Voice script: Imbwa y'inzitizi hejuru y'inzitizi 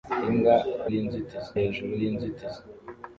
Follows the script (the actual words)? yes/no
yes